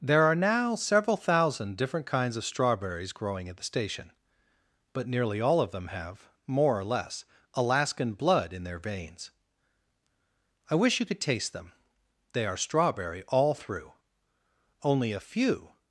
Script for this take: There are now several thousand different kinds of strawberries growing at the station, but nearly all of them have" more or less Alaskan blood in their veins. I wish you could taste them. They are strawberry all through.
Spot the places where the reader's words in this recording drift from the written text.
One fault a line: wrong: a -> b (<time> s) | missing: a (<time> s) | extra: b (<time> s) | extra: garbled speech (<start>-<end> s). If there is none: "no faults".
extra: Only a few (14.8 s)